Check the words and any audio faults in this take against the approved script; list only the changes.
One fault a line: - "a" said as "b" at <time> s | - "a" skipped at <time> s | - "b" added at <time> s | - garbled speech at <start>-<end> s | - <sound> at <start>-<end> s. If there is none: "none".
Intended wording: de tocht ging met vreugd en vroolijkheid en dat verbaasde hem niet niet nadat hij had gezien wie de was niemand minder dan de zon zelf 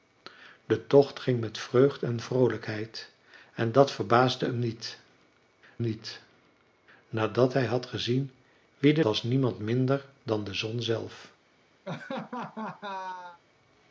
- laugh at 11.8-13.4 s